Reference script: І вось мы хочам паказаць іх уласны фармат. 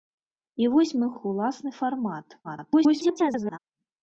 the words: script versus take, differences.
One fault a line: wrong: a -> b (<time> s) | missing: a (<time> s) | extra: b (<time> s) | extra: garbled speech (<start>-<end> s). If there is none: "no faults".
missing: хочам паказаць (1.1 s)
extra: garbled speech (2.4-3.6 s)